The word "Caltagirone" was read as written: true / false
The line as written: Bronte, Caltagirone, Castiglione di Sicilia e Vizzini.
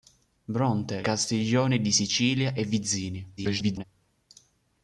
false